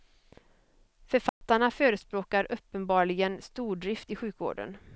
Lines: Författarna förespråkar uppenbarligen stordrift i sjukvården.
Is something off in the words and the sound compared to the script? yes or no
yes